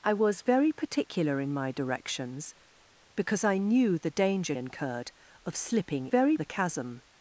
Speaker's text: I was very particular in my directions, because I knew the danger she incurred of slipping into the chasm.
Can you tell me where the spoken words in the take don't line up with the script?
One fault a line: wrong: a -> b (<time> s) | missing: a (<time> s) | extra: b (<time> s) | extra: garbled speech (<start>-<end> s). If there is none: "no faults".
missing: she (4.5 s)
wrong: into -> very (6.1 s)